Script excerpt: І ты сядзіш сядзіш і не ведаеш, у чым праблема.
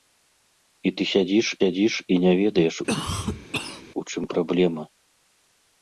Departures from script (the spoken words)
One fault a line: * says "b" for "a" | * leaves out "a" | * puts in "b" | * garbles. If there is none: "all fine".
all fine